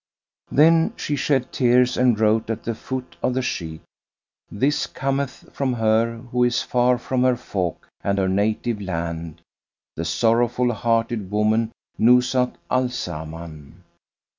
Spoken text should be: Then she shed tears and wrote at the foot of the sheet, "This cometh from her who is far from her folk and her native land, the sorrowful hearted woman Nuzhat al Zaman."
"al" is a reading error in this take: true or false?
false